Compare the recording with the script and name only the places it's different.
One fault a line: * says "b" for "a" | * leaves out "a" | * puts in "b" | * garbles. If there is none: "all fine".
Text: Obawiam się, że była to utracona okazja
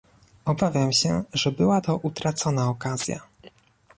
all fine